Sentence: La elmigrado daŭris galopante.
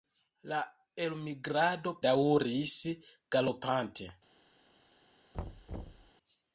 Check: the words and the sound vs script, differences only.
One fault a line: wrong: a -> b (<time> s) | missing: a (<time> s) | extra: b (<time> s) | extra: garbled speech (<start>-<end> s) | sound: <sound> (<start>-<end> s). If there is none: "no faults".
sound: thud (5.3-6.1 s)